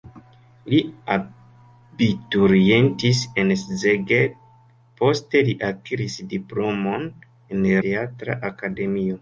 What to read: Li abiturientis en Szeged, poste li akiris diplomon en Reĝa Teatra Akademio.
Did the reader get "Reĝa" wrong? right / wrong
wrong